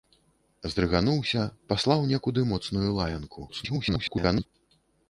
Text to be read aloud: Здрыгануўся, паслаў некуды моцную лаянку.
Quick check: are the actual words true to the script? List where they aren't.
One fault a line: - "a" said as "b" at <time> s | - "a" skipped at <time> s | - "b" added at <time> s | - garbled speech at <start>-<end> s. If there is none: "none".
- garbled speech at 3.5-4.5 s